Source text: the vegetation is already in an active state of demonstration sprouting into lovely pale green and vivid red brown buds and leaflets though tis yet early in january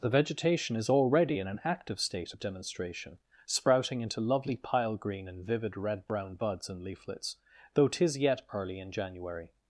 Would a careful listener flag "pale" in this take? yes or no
yes